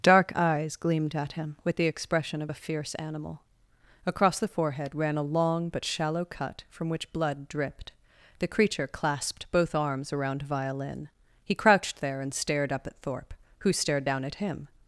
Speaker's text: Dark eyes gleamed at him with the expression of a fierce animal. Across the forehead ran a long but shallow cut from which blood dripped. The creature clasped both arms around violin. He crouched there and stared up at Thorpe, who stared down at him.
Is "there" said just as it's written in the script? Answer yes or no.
yes